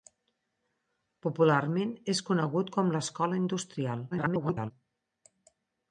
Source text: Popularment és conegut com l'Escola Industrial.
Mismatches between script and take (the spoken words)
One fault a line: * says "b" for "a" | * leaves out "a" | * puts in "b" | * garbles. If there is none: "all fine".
* garbles